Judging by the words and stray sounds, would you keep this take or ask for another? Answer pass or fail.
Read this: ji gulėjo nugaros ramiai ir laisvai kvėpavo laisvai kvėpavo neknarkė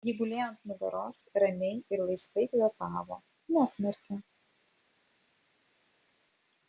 fail